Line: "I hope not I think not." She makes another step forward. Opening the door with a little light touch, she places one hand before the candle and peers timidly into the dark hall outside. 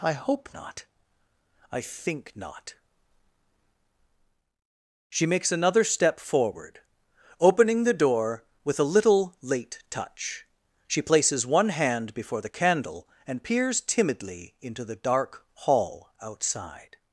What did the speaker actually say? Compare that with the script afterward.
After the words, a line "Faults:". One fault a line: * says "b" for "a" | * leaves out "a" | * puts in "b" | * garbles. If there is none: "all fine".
"I hope not I think not." She makes another step forward. Opening the door with a little late touch, she places one hand before the candle and peers timidly into the dark hall outside.
Faults:
* says "late" for "light"